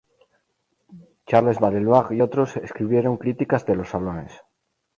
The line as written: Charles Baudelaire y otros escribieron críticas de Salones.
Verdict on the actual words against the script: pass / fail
fail